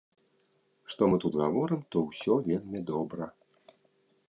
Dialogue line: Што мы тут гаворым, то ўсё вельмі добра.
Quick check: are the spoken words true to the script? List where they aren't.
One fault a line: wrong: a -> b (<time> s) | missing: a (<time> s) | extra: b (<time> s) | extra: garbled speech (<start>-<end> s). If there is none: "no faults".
no faults